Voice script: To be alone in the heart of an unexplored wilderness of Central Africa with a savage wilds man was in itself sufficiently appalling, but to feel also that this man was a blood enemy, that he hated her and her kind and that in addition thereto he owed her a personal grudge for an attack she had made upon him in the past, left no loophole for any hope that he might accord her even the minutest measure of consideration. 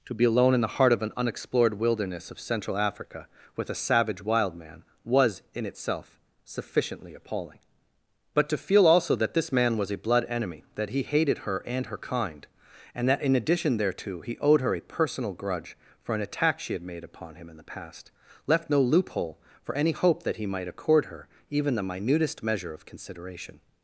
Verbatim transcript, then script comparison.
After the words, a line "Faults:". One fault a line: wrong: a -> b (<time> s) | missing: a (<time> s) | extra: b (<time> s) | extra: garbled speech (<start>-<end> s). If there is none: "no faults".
To be alone in the heart of an unexplored wilderness of Central Africa with a savage wild man was in itself sufficiently appalling, but to feel also that this man was a blood enemy, that he hated her and her kind and that in addition thereto he owed her a personal grudge for an attack she had made upon him in the past, left no loophole for any hope that he might accord her even the minutest measure of consideration.
Faults:
wrong: wilds -> wild (4.2 s)